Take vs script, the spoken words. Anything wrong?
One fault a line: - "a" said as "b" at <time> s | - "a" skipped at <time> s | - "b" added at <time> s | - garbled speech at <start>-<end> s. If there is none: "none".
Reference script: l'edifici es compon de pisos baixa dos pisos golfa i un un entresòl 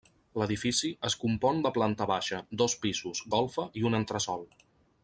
- "pisos" said as "planta" at 1.8 s
- "un" skipped at 4.0 s